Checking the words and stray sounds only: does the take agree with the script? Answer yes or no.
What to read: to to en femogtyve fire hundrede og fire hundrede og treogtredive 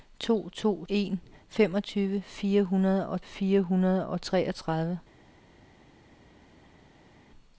yes